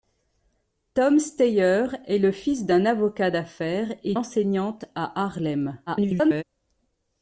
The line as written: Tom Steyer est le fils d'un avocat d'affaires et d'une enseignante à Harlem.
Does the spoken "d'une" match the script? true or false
false